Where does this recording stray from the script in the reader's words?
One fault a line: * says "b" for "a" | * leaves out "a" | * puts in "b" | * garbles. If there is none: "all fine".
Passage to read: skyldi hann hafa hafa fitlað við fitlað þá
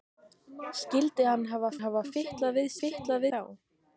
all fine